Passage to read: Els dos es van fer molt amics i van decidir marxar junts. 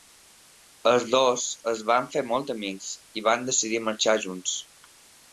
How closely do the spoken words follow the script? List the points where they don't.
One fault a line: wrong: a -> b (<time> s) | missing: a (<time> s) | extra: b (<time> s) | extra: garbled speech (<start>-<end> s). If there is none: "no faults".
no faults